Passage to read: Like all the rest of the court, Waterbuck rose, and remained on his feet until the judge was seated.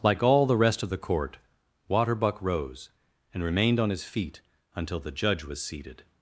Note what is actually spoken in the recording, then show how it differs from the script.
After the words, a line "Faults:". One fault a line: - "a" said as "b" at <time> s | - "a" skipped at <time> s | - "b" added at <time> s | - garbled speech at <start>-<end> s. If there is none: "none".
Like all the rest of the court, Waterbuck rose, and remained on his feet until the judge was seated.
Faults:
none